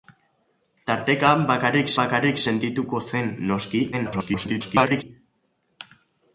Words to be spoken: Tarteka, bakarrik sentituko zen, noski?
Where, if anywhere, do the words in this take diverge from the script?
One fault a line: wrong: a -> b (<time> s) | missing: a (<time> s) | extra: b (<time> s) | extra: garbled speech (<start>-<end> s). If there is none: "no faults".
extra: bakarrik (2.0 s)
extra: garbled speech (3.9-5.0 s)